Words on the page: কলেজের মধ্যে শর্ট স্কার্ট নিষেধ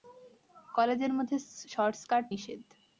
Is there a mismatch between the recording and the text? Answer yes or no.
no